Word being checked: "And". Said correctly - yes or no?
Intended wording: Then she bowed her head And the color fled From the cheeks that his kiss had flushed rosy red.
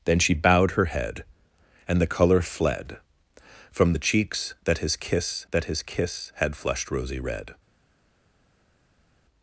yes